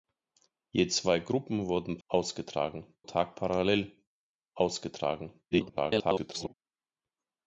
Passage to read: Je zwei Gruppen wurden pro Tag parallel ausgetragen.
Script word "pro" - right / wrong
wrong